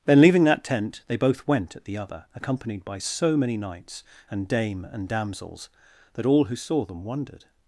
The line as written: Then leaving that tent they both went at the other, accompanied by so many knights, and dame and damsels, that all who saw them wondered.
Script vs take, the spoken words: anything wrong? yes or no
no